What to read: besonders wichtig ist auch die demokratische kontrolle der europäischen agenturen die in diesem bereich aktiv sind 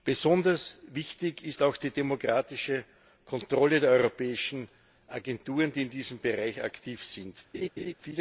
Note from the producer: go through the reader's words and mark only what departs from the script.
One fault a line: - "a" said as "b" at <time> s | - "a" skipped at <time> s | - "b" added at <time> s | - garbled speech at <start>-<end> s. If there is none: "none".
none